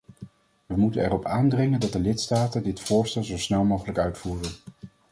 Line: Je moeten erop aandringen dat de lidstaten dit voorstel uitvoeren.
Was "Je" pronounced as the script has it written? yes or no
no